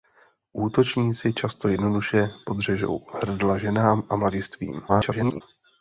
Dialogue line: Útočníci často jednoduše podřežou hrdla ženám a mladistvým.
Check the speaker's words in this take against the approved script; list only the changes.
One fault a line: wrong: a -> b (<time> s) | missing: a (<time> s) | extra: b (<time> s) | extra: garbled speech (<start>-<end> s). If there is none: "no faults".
extra: garbled speech (4.9-5.4 s)